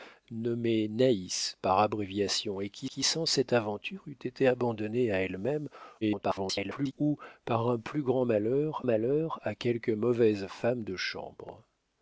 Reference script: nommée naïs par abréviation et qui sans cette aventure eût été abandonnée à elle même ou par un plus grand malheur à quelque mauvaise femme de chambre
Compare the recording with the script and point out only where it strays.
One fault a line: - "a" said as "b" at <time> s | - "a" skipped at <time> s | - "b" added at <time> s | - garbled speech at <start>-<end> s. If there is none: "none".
- "qui" added at 2.9 s
- garbled speech at 6.0-6.9 s
- "malheur" added at 8.8 s